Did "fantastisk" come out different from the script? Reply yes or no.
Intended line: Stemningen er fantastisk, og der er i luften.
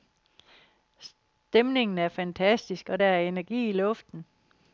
no